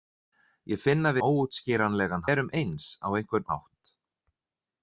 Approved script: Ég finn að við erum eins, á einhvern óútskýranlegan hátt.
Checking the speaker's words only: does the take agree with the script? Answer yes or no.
no